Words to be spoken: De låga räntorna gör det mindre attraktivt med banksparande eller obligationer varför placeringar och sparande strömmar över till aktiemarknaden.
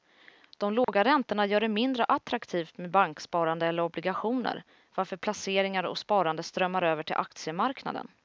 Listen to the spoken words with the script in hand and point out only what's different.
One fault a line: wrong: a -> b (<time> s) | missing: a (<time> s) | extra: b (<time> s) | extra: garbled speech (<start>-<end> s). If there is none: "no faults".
no faults